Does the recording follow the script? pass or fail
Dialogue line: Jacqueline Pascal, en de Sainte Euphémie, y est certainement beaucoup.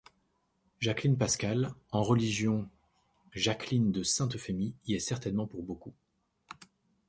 fail